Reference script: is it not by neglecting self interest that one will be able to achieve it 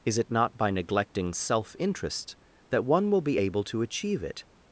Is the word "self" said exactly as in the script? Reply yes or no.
yes